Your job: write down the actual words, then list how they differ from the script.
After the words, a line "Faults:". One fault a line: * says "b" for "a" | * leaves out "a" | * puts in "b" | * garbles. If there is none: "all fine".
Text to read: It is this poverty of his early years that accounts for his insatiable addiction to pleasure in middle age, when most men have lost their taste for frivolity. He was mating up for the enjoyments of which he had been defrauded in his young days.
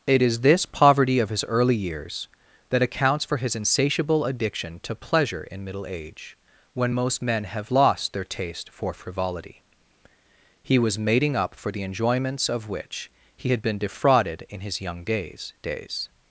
It is this poverty of his early years that accounts for his insatiable addiction to pleasure in middle age, when most men have lost their taste for frivolity. He was mating up for the enjoyments of which he had been defrauded in his young days days.
Faults:
* puts in "days"